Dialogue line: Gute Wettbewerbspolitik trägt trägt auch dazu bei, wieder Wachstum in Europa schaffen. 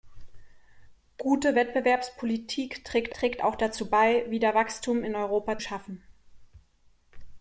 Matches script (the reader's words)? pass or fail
pass